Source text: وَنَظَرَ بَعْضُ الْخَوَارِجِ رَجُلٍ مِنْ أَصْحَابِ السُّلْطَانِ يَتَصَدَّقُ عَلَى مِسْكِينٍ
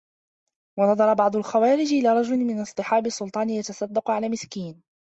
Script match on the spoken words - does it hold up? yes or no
no